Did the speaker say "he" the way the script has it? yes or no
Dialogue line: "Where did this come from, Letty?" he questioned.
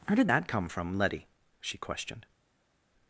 no